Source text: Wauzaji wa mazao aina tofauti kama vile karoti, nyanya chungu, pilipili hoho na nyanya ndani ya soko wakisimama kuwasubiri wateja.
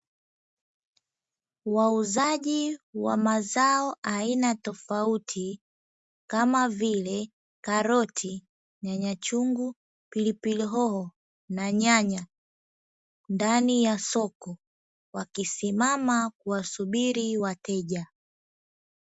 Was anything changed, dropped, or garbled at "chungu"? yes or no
no